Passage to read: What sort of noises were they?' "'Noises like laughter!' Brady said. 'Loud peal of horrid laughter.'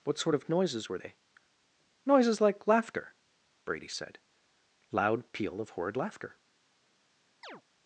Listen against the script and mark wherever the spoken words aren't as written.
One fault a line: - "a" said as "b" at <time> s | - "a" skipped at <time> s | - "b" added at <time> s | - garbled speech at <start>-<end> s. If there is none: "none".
none